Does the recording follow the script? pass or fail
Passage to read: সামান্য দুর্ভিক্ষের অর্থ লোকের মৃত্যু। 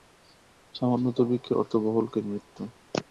fail